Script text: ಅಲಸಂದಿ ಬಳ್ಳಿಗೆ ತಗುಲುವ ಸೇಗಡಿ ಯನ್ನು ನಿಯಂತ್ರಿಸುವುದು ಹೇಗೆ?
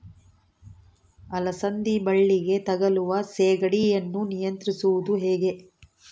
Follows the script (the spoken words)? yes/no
yes